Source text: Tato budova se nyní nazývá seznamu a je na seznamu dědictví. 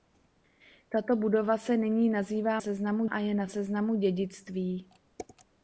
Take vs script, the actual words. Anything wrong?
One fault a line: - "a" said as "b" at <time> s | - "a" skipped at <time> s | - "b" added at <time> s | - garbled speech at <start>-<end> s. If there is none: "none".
none